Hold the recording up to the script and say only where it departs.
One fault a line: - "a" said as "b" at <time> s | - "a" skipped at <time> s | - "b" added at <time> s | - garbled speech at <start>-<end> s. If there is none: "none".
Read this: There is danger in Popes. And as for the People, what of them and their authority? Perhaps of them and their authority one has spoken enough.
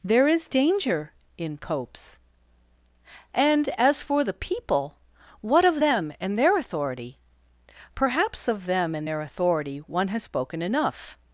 none